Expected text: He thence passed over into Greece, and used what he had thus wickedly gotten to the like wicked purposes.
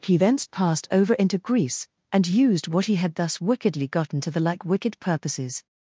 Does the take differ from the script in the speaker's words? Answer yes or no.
no